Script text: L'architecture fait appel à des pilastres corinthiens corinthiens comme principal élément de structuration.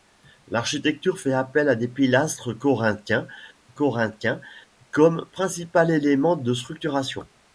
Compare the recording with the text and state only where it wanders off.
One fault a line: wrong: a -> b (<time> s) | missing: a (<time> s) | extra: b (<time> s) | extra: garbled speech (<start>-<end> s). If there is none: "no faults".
no faults